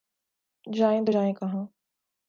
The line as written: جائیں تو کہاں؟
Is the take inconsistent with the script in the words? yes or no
yes